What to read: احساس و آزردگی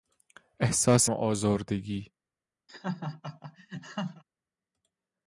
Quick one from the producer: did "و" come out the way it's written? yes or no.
yes